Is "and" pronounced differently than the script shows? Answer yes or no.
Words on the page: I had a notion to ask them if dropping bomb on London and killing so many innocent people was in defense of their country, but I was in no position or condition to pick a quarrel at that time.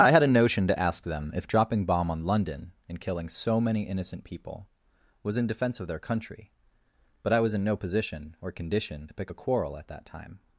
no